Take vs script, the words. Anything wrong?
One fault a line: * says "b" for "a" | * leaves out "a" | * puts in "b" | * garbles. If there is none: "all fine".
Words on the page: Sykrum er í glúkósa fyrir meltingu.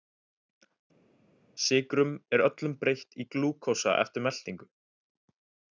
* puts in "öllum breytt"
* says "eftir" for "fyrir"